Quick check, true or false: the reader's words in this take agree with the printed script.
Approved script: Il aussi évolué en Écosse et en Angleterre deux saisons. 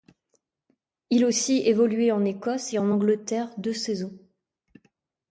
true